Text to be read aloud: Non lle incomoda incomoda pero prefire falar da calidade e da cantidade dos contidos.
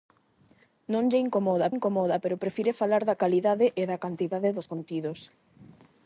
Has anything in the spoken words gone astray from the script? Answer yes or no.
no